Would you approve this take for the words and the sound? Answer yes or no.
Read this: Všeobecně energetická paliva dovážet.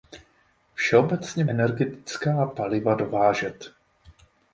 yes